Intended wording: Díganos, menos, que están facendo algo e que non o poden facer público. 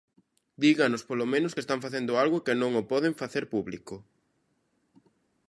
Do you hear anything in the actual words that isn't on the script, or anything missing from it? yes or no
yes